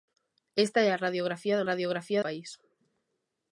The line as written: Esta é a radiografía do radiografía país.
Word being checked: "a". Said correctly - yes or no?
yes